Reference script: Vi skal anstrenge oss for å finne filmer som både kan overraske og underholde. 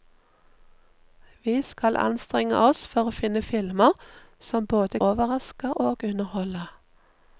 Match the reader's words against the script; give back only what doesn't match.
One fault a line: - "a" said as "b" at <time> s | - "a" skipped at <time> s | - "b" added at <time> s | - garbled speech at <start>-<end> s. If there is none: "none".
- "kan" skipped at 5.0 s